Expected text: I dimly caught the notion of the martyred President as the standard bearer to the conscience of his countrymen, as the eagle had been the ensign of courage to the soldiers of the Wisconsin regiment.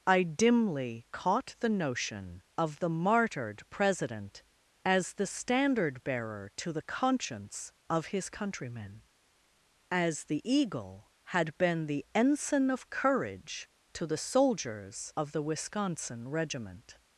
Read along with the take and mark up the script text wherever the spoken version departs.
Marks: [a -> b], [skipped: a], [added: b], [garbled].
I dimly caught the notion of the martyred President as the standard bearer to the conscience of his countrymen, as the eagle had been the ensign of courage to the soldiers of the Wisconsin regiment.